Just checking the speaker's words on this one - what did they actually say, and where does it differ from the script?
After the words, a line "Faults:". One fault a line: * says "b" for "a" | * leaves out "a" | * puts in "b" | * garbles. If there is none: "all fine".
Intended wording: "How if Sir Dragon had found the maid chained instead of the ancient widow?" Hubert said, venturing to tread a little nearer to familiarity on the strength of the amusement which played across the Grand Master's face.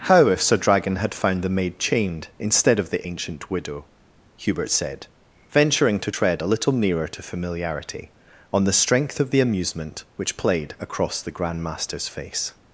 "How if Sir Dragon had found the maid chained instead of the ancient widow?" Hubert said, venturing to tread a little nearer to familiarity on the strength of the amusement which played across the Grand Master's face.
Faults:
all fine